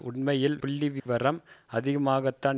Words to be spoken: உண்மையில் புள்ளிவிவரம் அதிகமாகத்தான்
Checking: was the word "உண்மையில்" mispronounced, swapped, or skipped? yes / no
no